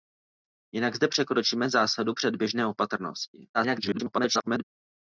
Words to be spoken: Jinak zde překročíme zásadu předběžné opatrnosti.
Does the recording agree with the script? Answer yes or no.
no